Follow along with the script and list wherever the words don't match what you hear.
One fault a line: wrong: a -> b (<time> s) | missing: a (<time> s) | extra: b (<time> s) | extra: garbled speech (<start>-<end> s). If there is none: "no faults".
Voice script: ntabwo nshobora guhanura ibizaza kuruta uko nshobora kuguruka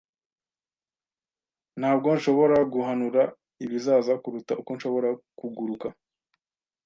no faults